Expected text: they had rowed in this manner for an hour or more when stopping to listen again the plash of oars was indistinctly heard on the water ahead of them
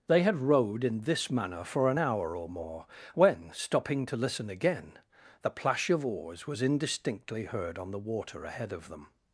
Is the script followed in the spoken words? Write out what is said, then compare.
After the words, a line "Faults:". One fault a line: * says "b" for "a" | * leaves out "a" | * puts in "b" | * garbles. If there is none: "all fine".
they had rowed in this manner for an hour or more when stopping to listen again the plash of oars was indistinctly heard on the water ahead of them
Faults:
all fine